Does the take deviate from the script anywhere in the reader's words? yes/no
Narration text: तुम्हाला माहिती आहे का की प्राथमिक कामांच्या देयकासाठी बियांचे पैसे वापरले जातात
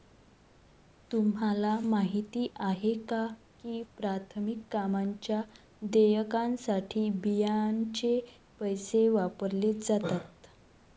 no